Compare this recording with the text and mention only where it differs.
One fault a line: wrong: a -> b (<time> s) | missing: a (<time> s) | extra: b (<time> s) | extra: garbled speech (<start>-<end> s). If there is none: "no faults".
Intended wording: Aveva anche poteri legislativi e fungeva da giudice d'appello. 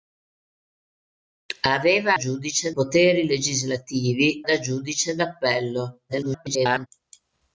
wrong: anche -> giudice (2.2 s)
missing: e fungeva (4.4 s)
extra: garbled speech (6.1-6.9 s)